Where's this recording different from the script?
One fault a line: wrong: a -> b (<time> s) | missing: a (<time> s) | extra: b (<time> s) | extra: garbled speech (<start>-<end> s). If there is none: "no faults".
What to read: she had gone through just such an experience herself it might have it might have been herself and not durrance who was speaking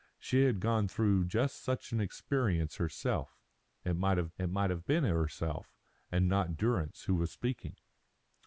no faults